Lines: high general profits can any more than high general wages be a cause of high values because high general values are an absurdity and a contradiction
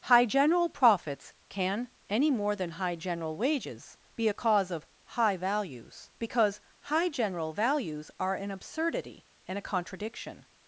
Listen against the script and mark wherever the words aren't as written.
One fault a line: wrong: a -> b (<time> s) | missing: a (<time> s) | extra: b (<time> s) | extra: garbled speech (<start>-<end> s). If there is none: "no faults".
no faults